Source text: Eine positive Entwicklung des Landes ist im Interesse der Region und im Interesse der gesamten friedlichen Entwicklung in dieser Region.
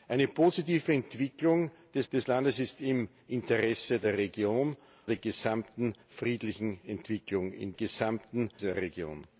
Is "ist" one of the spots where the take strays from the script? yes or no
no